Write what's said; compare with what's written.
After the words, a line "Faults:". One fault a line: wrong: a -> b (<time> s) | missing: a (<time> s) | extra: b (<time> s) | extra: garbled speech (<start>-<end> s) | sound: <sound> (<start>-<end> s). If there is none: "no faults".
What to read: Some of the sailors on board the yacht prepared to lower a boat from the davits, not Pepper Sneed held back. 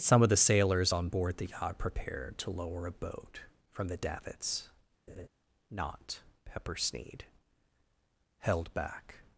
Some of the sailors on board the yacht prepared to lower a boat from the davits, not Pepper Sneed held back.
Faults:
sound: laugh (5.1-5.3 s)